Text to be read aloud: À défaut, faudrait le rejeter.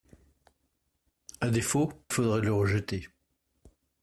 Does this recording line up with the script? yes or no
yes